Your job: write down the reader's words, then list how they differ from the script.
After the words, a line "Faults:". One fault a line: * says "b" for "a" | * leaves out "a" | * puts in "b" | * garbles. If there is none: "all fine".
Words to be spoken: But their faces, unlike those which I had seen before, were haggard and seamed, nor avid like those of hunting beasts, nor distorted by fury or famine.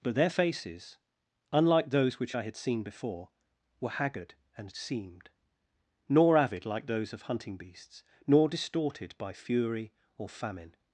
But their faces, unlike those which I had seen before, were haggard and seamed, nor avid like those of hunting beasts, nor distorted by fury or famine.
Faults:
all fine